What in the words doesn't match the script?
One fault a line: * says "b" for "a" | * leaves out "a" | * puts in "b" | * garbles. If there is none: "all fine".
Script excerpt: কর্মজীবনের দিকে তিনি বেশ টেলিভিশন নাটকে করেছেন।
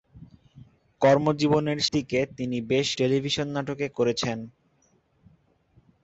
all fine